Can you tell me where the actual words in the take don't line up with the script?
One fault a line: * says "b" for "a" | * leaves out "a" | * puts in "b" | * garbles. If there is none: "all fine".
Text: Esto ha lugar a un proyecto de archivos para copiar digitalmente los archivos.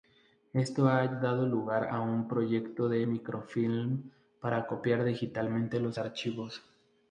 * puts in "dado"
* says "microfilm" for "archivos"